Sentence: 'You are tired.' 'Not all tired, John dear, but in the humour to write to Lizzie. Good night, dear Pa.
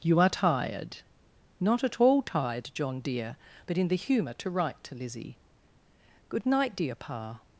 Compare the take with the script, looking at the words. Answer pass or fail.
fail